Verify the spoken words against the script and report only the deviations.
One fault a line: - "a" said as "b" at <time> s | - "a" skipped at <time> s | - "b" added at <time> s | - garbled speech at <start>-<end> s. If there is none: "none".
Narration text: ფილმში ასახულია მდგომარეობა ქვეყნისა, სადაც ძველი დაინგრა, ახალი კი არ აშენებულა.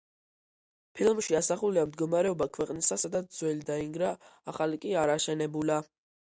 none